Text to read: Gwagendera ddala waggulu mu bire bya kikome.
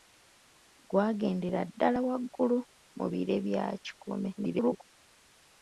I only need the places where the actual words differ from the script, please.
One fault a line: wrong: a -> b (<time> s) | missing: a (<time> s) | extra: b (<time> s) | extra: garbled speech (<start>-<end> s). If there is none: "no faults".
extra: garbled speech (4.4-4.9 s)